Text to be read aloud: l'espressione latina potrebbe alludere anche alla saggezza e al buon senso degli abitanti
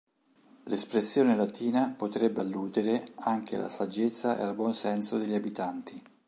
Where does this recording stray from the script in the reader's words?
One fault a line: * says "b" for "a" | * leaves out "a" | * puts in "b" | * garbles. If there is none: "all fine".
all fine